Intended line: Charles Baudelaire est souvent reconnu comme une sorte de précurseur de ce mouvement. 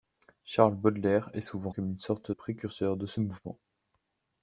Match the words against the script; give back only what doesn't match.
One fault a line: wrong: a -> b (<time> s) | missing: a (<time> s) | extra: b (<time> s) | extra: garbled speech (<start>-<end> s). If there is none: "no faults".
missing: reconnu (1.7 s)
missing: de (2.3 s)